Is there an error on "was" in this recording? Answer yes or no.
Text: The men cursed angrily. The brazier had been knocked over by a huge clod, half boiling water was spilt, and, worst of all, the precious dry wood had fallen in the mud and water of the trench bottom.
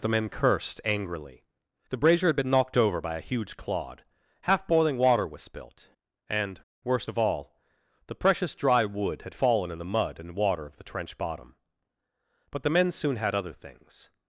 no